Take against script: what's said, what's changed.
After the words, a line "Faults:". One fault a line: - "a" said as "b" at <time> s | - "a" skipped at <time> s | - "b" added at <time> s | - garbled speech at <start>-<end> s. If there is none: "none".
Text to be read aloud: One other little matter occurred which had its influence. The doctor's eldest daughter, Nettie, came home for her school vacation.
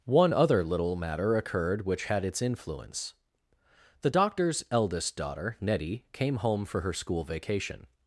One other little matter occurred which had its influence. The doctor's eldest daughter, Nettie, came home for her school vacation.
Faults:
none